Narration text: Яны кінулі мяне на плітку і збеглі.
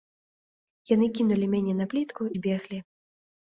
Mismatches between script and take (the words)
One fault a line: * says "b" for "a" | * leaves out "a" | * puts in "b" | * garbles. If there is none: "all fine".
* leaves out "і"